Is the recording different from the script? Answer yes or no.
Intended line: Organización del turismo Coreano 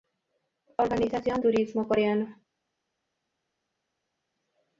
yes